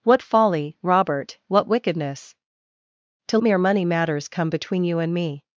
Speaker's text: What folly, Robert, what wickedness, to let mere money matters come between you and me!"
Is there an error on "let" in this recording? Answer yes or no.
yes